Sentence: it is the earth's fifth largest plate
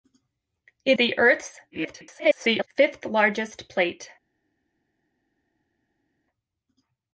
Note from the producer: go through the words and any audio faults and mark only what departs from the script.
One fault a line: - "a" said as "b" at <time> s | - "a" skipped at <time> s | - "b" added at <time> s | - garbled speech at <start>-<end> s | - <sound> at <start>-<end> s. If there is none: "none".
- "is" skipped at 1.0 s
- garbled speech at 1.7-2.7 s